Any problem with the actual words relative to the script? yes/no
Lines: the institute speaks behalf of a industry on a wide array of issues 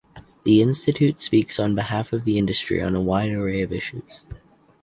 yes